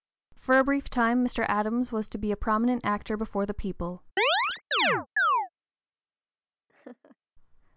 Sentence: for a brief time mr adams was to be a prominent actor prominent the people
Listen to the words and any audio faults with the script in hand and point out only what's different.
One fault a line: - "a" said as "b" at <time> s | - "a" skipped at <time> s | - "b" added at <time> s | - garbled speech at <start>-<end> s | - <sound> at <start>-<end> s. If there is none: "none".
- "prominent" said as "before" at 3.2 s
- chirp at 4.2-5.5 s
- laugh at 6.7-7.2 s